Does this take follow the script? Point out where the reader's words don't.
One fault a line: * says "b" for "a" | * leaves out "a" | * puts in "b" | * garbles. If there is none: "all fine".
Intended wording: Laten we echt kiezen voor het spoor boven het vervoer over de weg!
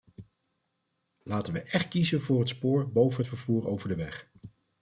all fine